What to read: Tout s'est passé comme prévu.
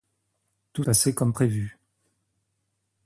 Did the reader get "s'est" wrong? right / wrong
wrong